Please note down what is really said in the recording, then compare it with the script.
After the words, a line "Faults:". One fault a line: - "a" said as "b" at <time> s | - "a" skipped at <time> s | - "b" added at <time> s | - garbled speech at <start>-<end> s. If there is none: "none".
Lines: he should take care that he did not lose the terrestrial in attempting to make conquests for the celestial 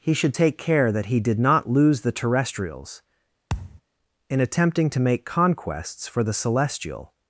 he should take care that he did not lose the terrestrials in attempting to make conquests for the celestial
Faults:
- "terrestrial" said as "terrestrials" at 2.1 s